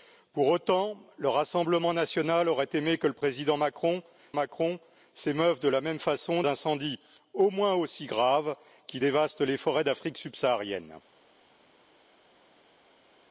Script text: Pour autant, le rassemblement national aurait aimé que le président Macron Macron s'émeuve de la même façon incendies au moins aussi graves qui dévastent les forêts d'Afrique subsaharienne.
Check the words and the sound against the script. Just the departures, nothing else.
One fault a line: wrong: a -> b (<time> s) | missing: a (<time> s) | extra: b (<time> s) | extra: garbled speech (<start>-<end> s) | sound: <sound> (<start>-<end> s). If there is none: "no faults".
no faults